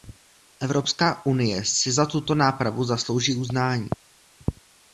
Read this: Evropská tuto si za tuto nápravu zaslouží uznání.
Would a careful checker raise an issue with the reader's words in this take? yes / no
yes